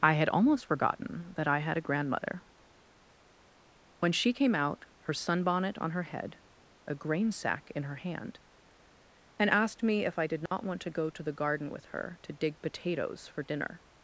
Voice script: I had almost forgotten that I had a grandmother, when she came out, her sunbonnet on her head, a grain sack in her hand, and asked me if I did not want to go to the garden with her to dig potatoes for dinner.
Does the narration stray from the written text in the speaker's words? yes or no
no